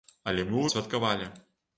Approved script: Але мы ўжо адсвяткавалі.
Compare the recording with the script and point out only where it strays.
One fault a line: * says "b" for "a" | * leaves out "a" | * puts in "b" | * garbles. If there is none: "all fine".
* leaves out "ўжо"